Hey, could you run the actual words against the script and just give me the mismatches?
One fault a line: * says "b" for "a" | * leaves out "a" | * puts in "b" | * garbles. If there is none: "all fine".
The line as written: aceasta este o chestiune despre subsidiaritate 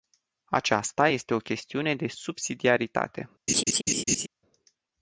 * says "de" for "despre"